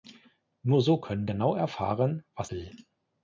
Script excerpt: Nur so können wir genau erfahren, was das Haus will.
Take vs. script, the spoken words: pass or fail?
fail